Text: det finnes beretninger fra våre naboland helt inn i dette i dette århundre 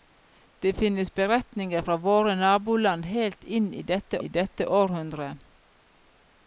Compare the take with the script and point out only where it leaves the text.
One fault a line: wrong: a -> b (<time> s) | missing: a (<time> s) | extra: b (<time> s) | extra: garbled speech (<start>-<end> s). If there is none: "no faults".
no faults